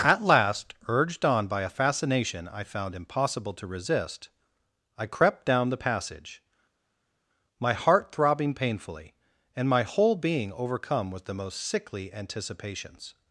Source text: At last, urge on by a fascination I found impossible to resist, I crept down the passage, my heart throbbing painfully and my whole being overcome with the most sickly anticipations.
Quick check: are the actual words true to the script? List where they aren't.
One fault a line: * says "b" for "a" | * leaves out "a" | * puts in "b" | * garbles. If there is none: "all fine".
* says "urged" for "urge"